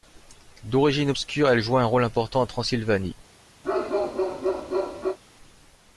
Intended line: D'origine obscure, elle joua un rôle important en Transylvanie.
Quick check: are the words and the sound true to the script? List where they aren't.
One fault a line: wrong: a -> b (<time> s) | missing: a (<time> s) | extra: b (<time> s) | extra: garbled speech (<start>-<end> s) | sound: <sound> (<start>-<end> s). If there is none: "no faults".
sound: bark (3.6-5.2 s)